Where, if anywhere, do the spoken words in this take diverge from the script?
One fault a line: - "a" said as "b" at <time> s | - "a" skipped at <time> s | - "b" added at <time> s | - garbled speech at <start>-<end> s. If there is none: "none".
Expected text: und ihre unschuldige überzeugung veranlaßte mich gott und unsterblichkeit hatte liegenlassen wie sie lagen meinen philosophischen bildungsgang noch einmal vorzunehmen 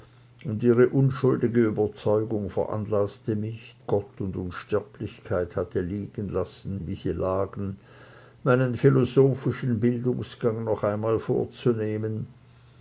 none